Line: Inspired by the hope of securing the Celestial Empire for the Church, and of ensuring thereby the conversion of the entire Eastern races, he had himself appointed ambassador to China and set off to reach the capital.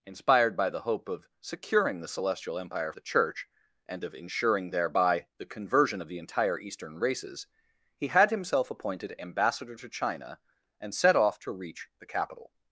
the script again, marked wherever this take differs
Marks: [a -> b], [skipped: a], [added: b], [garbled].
Inspired by the hope of securing the Celestial Empire [skipped: for] the Church, and of ensuring thereby the conversion of the entire Eastern races, he had himself appointed ambassador to China and set off to reach the capital.